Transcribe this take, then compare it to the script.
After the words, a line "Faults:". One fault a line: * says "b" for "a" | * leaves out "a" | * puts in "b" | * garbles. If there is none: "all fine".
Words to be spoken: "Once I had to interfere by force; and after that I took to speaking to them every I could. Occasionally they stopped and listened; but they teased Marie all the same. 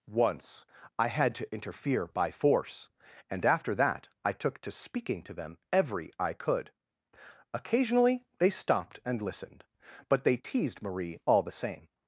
"Once I had to interfere by force; and after that I took to speaking to them every I could. Occasionally they stopped and listened; but they teased Marie all the same.
Faults:
all fine